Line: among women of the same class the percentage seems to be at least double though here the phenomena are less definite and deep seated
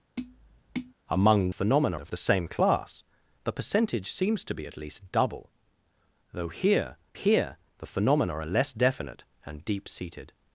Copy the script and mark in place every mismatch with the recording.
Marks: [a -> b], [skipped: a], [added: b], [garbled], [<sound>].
[tap] among [women -> phenomena] of the same class the percentage seems to be at least double though here [added: here] the phenomena are less definite and deep seated